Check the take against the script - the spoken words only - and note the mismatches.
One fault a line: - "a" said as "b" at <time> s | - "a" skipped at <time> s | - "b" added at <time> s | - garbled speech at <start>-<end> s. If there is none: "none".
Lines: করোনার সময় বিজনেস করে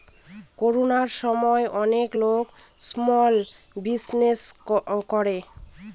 - "অনেক লোক স্মল" added at 1.8 s